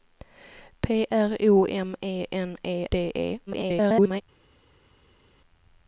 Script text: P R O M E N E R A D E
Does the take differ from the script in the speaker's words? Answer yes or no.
yes